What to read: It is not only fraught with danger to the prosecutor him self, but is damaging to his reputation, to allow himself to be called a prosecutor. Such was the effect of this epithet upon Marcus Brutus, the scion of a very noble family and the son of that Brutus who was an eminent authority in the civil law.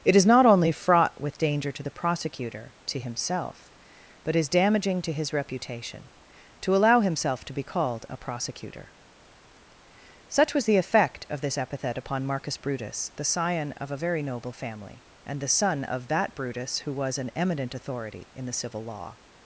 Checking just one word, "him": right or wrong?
wrong